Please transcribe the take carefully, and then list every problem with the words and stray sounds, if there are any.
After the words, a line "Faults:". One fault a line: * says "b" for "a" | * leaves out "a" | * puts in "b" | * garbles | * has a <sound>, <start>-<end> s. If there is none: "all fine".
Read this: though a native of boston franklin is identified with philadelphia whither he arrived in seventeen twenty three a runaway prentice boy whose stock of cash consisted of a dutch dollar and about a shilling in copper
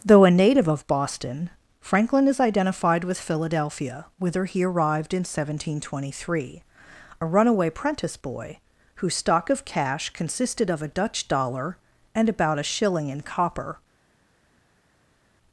though a native of boston franklin is identified with philadelphia whither he arrived in seventeen twenty three a runaway prentice boy whose stock of cash consisted of a dutch dollar and about a shilling in copper
Faults:
all fine